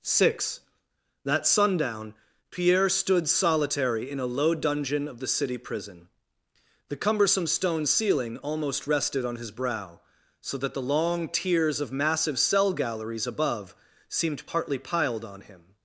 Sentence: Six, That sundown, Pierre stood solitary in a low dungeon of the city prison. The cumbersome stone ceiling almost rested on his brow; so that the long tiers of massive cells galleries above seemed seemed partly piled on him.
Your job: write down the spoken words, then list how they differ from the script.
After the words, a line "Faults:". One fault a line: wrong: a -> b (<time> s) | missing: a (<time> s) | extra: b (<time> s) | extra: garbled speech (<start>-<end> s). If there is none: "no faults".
Six, That sundown, Pierre stood solitary in a low dungeon of the city prison. The cumbersome stone ceiling almost rested on his brow; so that the long tiers of massive cell galleries above seemed partly piled on him.
Faults:
wrong: cells -> cell (12.4 s)
missing: seemed (14.5 s)